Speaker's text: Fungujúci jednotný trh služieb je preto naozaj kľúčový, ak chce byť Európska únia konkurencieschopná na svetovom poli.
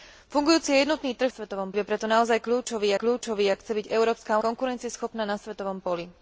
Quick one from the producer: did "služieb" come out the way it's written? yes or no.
no